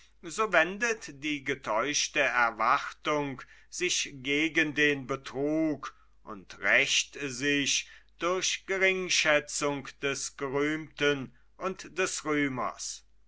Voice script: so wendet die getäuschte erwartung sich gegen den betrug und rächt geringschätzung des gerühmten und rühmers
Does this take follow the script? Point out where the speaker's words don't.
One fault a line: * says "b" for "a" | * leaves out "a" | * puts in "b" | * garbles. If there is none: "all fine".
* puts in "sich durch"
* puts in "des"